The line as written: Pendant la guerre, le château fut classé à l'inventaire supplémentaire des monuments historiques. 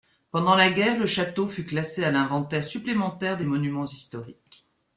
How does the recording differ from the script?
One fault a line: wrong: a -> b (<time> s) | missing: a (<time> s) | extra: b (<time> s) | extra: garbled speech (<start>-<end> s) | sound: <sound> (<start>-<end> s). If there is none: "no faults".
no faults